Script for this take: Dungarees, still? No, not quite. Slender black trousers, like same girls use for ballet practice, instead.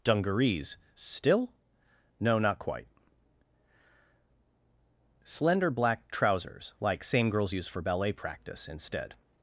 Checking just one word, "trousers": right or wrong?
right